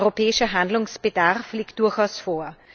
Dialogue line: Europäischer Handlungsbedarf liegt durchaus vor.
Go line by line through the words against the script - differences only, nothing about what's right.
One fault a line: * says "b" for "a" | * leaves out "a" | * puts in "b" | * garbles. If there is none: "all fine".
all fine